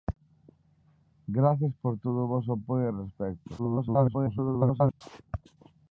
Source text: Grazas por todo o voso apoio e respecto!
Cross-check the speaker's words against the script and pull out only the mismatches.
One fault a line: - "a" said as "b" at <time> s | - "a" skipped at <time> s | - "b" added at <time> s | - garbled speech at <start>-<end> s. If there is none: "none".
- garbled speech at 3.6-5.0 s